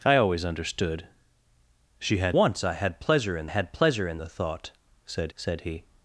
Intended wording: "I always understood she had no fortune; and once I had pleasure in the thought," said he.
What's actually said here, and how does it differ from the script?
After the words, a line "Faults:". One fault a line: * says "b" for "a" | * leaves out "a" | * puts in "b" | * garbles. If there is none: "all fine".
"I always understood she had once I had pleasure in had pleasure in the thought," said said he.
Faults:
* says "once I had pleasure in" for "no fortune and once I"
* puts in "said"